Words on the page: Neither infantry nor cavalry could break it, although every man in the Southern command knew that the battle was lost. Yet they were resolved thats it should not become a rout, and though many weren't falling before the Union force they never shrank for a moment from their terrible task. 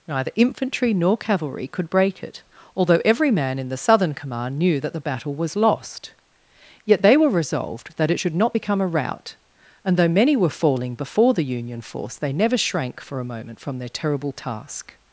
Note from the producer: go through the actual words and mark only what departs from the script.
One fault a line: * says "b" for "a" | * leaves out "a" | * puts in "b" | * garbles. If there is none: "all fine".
* says "that" for "thats"
* says "were" for "weren't"